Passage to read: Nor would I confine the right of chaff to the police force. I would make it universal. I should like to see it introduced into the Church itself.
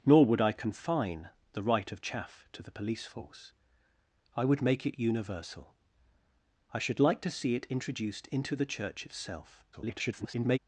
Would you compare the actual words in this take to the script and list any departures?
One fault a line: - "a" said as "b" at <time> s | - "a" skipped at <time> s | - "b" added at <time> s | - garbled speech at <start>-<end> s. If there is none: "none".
- garbled speech at 9.7-10.6 s